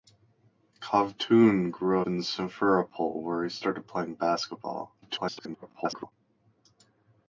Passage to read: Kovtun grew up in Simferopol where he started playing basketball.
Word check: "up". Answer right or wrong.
wrong